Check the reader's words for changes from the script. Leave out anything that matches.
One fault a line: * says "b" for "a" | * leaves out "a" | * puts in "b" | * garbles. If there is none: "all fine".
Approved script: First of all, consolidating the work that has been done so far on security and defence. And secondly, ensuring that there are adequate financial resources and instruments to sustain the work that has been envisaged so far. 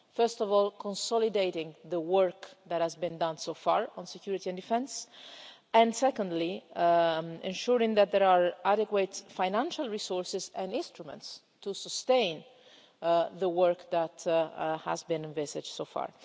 all fine